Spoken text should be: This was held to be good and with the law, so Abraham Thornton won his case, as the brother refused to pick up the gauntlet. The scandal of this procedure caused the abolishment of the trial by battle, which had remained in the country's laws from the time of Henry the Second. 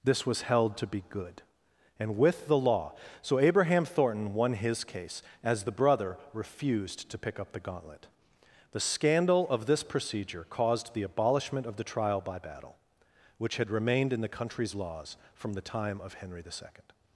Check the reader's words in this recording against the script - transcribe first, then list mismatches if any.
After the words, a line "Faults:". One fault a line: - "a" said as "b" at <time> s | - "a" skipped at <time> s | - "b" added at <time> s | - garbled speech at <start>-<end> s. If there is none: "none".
This was held to be good and with the law, so Abraham Thornton won his case, as the brother refused to pick up the gauntlet. The scandal of this procedure caused the abolishment of the trial by battle, which had remained in the country's laws from the time of Henry the Second.
Faults:
none